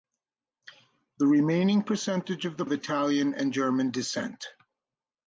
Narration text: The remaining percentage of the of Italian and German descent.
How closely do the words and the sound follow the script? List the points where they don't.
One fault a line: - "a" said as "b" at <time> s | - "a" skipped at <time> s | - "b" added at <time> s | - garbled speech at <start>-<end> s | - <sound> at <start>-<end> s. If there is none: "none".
none